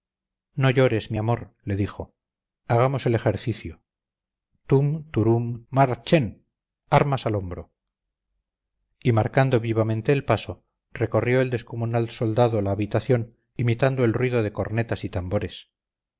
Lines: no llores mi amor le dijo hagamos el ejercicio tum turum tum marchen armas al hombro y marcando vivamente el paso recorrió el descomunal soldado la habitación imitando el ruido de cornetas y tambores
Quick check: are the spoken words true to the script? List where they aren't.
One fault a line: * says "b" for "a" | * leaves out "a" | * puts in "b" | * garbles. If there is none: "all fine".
* leaves out "tum"